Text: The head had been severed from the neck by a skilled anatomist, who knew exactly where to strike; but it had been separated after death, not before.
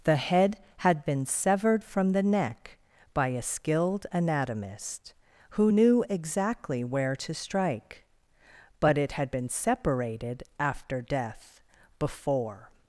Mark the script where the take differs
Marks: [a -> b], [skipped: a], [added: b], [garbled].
The head had been severed from the neck by a skilled anatomist, who knew exactly where to strike; but it had been separated after death, [skipped: not] before.